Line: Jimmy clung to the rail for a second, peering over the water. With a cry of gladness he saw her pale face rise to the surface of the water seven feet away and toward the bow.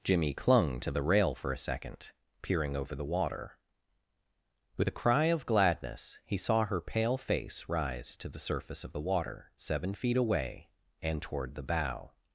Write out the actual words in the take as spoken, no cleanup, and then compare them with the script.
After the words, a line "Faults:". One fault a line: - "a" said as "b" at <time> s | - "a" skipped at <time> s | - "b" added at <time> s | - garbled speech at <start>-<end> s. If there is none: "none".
Jimmy clung to the rail for a second, peering over the water. With a cry of gladness he saw her pale face rise to the surface of the water seven feet away and toward the bow.
Faults:
none